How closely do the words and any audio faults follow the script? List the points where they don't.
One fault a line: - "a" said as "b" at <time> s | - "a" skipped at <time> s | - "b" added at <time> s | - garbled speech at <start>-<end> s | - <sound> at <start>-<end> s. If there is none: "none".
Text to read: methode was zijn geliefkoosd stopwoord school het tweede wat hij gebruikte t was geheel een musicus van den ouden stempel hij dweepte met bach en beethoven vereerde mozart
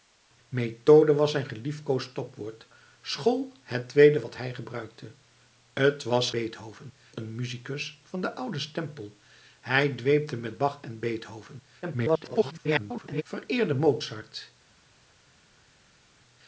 - "geheel" said as "beethoven" at 6.3 s
- garbled speech at 11.8-13.2 s